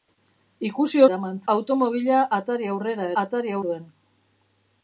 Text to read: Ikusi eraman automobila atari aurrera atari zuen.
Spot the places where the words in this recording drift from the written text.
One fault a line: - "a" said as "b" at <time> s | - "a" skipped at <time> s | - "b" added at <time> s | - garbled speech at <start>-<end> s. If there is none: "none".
none